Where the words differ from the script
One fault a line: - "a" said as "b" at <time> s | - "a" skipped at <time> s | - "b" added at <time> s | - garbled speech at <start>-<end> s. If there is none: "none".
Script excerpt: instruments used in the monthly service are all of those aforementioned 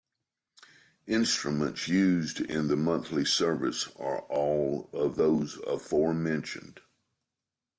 none